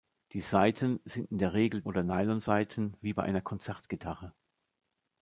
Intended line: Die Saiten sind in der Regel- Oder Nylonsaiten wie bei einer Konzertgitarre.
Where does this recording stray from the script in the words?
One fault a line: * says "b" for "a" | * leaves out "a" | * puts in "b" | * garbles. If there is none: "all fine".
all fine